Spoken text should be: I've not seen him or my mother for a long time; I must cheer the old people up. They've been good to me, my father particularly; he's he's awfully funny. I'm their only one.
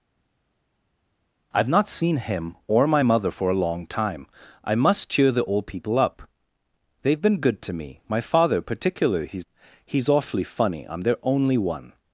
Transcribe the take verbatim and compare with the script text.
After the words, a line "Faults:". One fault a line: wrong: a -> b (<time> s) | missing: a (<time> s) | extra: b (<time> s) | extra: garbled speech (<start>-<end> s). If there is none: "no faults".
I've not seen him or my mother for a long time; I must cheer the old people up. They've been good to me, my father particularly; he's he's awfully funny. I'm their only one.
Faults:
no faults